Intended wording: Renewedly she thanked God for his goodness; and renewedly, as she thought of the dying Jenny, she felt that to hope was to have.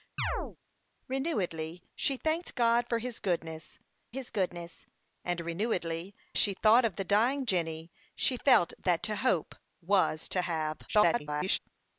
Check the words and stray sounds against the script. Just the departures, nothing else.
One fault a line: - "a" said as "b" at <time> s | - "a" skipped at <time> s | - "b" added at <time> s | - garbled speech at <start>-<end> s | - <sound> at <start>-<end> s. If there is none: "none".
- chirp at 0.2-0.6 s
- "his goodness" added at 4.1 s
- "as" skipped at 6.1 s
- garbled speech at 10.9-11.6 s